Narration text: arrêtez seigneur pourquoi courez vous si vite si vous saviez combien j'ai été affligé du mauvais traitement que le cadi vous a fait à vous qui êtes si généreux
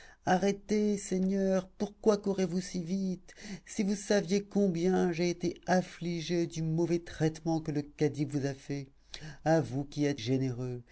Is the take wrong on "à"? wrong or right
right